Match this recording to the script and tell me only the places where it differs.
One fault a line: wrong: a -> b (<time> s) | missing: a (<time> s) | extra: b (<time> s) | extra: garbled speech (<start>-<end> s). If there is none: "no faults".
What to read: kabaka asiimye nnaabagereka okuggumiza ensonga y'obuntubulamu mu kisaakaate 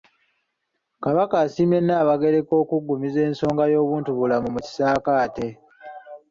no faults